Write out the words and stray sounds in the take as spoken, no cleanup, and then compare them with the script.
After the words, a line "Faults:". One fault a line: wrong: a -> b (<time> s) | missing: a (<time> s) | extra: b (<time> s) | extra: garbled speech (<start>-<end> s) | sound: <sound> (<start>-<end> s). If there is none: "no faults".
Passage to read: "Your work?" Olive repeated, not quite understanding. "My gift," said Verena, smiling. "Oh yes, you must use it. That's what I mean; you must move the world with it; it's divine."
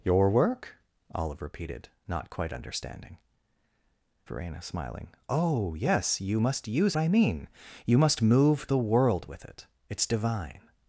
"Your work?" Olive repeated, not quite understanding. "Verena, smiling. "Oh yes, you must use I mean; you must move the world with it; it's divine."
Faults:
missing: My gift said (3.2 s)
missing: it That's what (6.9 s)